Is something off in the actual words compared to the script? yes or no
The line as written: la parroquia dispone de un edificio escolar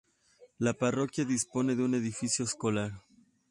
no